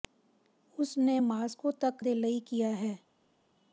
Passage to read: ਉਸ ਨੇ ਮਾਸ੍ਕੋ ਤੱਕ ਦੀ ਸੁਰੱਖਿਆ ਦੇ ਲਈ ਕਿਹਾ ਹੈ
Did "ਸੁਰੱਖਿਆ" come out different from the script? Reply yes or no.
yes